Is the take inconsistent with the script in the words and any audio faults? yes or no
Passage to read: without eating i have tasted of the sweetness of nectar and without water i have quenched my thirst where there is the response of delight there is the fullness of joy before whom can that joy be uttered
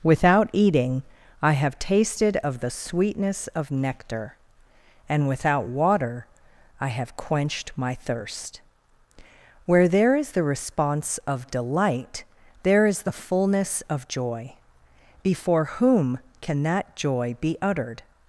no